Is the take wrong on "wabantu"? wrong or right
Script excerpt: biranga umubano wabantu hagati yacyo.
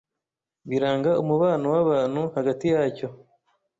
right